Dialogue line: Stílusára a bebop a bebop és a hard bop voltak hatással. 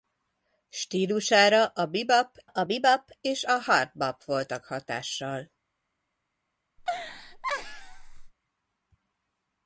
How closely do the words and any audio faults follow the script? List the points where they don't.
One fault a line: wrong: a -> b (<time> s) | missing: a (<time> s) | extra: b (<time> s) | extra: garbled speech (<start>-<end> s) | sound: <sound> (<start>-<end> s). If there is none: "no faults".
sound: laugh (6.8-8.3 s)